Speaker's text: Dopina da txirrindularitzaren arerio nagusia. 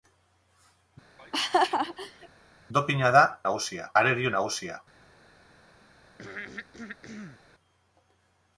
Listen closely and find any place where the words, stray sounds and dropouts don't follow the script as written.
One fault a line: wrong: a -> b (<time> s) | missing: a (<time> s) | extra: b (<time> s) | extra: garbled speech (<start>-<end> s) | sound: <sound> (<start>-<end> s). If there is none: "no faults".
sound: laugh (1.2-2.3 s)
wrong: txirrindularitzaren -> nagusia (3.5 s)
sound: throat clearing (6.2-7.4 s)